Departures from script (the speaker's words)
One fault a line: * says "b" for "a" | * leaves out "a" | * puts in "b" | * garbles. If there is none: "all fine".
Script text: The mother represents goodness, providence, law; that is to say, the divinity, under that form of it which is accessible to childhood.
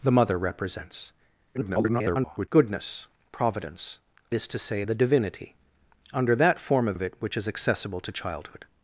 * garbles
* leaves out "law that"
* puts in "of"